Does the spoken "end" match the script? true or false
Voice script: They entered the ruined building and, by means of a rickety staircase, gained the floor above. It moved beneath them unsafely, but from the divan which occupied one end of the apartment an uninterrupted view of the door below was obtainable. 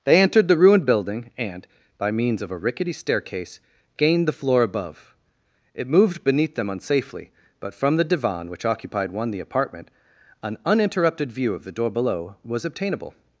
false